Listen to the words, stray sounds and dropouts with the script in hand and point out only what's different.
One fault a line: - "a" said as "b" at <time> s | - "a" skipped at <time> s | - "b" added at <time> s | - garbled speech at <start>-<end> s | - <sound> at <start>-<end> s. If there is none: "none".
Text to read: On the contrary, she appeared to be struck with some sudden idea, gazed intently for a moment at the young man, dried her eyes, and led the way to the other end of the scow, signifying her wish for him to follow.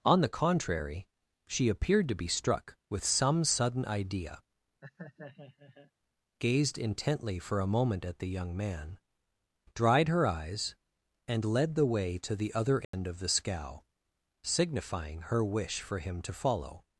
- laugh at 4.8-5.9 s
- dropout at 12.8-12.9 s